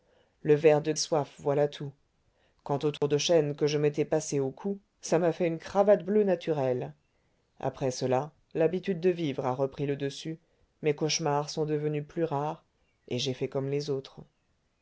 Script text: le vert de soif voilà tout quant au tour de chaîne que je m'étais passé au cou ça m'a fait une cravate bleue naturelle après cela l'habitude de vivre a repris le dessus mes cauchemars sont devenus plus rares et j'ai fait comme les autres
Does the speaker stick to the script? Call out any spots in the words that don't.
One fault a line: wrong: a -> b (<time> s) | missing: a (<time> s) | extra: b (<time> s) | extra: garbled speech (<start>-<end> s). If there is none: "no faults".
no faults